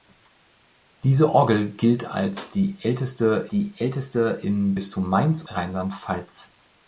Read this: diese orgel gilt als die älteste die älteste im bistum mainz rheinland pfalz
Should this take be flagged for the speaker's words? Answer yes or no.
no